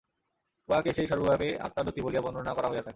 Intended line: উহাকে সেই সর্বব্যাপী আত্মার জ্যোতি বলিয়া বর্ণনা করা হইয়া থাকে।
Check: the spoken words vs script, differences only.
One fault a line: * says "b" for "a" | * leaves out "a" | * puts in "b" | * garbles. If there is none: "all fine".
all fine